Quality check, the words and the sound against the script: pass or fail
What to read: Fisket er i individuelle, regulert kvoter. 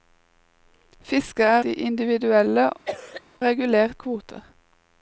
fail